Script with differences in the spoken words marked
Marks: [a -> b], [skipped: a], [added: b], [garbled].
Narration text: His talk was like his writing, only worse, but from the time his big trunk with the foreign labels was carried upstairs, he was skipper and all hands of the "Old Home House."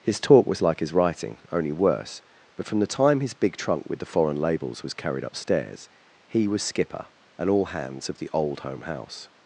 His talk was like his writing, only worse, but from the time his big trunk with the foreign labels was carried upstairs, he was skipper and all hands of the "Old Home House."